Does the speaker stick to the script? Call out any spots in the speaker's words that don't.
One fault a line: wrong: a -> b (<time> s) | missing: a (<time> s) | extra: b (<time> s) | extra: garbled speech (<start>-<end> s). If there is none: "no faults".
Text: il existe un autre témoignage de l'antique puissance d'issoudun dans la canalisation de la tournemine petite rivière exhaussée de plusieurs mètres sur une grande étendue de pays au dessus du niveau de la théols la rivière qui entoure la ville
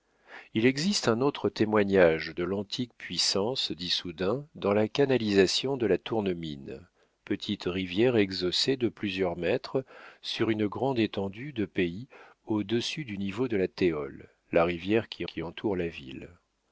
extra: qui (15.3 s)